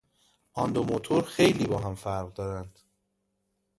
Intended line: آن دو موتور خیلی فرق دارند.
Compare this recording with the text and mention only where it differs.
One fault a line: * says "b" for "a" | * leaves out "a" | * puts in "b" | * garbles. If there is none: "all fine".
* puts in "با هم"